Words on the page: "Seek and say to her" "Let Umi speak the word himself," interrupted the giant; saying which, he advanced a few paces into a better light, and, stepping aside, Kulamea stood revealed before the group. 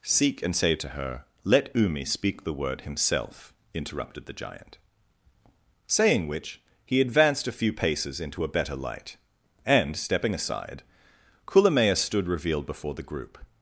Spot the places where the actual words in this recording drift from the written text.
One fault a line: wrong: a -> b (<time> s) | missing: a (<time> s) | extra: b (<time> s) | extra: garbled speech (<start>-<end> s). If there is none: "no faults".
no faults